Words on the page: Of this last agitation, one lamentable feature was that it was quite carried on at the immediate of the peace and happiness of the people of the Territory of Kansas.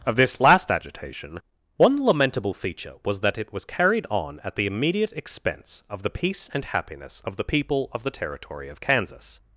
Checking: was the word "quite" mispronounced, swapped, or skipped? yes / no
yes